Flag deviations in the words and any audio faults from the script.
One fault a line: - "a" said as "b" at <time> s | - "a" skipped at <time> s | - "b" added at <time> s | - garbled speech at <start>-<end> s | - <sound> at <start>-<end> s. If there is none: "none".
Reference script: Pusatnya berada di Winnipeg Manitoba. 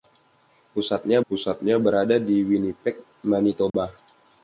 - "pusatnya" added at 1.3 s
- dropout at 3.7-3.7 s